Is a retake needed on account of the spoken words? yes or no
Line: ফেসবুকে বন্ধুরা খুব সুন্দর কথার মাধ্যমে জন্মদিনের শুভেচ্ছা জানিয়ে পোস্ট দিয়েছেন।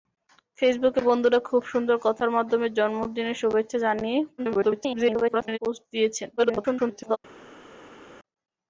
yes